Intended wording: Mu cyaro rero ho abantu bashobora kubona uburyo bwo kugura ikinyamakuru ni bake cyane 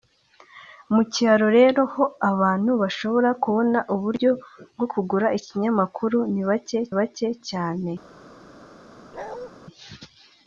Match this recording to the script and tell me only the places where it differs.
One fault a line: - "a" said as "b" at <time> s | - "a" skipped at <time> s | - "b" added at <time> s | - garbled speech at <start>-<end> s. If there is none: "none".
- "bake" added at 7.0 s